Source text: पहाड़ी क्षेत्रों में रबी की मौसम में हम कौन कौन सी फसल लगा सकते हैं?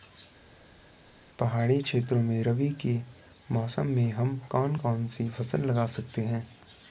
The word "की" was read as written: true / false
false